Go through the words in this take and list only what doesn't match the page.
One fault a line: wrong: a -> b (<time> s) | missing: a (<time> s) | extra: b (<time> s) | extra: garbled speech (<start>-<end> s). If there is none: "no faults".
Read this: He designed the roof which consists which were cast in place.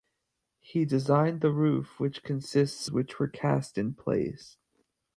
no faults